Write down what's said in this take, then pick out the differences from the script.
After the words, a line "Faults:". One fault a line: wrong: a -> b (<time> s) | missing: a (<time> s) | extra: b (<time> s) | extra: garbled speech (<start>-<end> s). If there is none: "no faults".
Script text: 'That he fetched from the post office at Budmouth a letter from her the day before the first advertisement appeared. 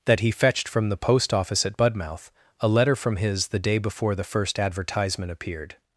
'That he fetched from the post office at Budmouth a letter from his the day before the first advertisement appeared.
Faults:
wrong: her -> his (3.2 s)